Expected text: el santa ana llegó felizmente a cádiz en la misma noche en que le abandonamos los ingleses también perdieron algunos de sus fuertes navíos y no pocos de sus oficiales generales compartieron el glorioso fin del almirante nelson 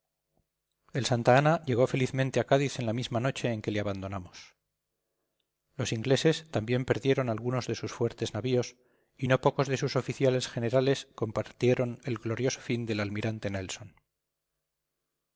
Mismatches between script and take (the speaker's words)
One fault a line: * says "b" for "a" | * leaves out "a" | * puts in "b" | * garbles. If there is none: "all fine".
all fine